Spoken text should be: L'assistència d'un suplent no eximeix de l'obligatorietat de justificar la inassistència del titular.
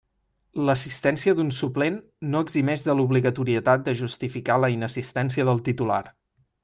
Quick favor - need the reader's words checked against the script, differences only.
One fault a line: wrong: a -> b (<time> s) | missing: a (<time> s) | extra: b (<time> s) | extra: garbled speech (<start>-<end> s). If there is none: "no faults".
no faults